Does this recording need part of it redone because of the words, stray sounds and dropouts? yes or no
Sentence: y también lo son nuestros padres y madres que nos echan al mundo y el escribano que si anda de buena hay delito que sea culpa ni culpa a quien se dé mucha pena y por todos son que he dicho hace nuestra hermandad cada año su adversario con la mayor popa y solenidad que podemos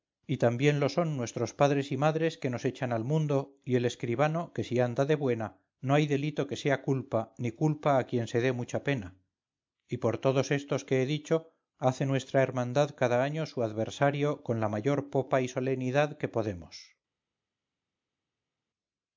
yes